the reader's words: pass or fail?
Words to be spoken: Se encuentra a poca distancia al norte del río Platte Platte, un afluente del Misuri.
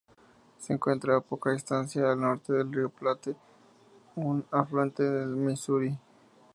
fail